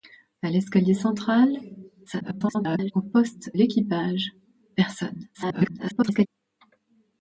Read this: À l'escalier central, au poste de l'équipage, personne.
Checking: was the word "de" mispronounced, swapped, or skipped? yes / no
yes